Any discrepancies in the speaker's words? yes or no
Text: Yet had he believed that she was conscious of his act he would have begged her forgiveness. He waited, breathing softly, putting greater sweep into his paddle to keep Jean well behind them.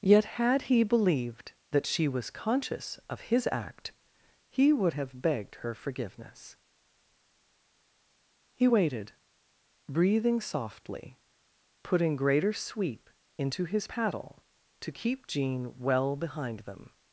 no